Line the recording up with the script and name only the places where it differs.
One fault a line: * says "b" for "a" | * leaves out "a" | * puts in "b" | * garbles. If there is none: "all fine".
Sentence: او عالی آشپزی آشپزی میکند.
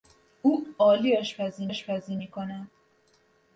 all fine